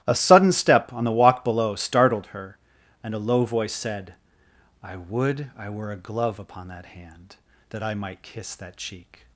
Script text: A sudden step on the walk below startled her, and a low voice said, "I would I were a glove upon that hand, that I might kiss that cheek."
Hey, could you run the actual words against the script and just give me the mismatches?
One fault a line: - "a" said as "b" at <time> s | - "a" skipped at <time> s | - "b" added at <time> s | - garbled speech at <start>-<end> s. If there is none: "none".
none